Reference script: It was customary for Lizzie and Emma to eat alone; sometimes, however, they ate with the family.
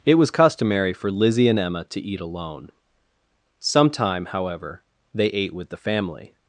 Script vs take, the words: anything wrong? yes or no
yes